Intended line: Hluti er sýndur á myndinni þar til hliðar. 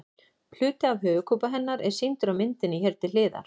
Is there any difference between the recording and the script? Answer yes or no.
yes